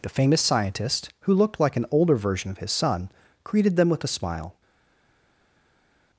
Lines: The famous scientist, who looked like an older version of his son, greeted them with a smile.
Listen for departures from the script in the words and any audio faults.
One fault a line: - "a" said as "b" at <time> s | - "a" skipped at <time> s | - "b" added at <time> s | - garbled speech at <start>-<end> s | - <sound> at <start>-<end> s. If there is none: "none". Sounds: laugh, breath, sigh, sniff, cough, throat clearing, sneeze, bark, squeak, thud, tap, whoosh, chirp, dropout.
none